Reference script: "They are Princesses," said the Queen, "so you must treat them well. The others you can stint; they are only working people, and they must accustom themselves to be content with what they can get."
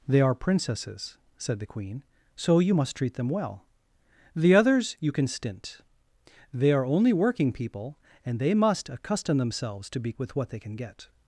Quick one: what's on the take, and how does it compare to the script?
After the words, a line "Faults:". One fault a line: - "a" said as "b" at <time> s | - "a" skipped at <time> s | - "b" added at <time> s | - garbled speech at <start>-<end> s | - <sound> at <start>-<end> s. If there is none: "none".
"They are Princesses," said the Queen, "so you must treat them well. The others you can stint; they are only working people, and they must accustom themselves to be with what they can get."
Faults:
- "content" skipped at 10.1 s